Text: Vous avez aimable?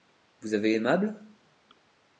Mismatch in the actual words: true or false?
false